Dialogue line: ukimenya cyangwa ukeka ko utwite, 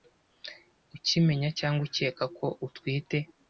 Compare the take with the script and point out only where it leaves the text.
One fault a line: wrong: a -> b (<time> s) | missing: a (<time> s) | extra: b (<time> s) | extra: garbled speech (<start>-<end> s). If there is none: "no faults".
no faults